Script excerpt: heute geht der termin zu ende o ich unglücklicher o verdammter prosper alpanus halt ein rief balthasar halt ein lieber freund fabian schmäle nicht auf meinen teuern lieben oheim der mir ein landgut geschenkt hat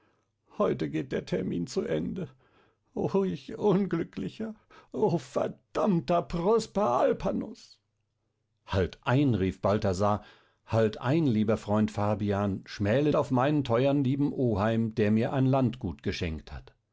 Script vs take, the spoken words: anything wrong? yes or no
yes